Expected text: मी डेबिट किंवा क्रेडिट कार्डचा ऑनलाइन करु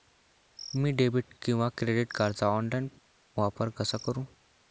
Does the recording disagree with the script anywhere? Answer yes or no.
yes